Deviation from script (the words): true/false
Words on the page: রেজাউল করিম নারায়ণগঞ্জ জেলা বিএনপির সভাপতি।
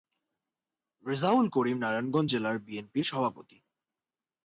false